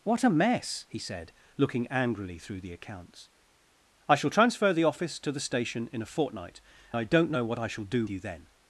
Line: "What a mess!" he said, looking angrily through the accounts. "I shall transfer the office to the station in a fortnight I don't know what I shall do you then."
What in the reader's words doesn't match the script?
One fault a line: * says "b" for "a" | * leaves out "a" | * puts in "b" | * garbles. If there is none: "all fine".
all fine